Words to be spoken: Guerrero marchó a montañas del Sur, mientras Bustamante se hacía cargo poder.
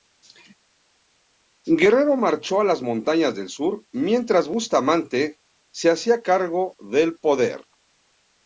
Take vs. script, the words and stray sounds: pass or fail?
fail